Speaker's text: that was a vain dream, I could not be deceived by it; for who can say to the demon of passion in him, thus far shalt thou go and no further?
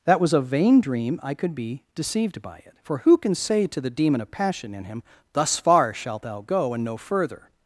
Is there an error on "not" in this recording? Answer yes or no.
yes